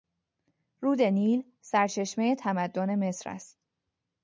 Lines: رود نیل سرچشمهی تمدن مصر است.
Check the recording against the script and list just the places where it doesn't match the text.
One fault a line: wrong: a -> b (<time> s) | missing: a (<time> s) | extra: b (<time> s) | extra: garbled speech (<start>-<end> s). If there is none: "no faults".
no faults